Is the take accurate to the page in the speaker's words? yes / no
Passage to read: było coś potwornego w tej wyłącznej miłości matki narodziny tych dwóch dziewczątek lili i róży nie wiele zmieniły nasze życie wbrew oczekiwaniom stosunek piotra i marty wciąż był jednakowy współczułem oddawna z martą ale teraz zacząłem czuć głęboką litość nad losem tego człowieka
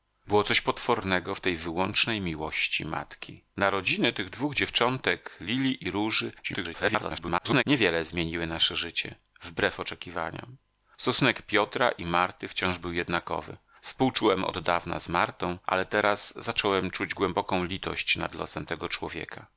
no